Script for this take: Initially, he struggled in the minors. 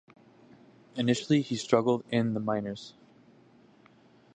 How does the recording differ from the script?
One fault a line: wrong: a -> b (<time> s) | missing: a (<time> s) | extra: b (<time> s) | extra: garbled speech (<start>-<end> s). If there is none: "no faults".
no faults